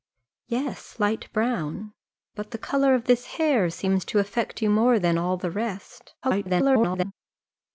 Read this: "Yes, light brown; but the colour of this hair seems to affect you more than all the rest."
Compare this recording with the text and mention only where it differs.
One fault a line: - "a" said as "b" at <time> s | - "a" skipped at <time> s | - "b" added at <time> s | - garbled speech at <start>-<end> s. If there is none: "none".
- garbled speech at 6.2-7.1 s